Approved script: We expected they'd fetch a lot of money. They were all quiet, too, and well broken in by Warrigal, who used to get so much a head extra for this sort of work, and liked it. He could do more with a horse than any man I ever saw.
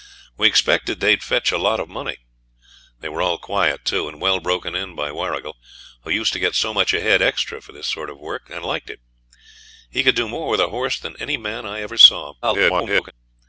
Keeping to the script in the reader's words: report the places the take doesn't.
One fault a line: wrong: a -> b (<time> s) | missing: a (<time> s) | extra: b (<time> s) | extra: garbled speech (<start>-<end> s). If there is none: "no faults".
extra: garbled speech (12.4-13.1 s)